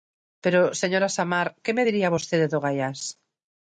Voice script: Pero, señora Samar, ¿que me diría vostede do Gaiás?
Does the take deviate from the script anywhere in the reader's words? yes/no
no